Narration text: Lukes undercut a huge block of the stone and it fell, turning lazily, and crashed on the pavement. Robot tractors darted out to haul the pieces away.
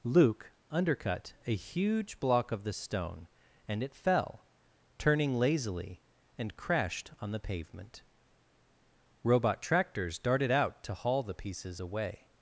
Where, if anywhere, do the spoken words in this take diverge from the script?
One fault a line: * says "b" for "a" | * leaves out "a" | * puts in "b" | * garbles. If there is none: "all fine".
* says "Luke" for "Lukes"